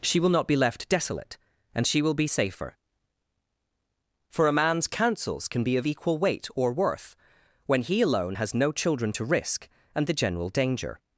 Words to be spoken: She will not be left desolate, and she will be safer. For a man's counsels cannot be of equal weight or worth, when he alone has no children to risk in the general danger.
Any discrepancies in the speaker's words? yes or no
yes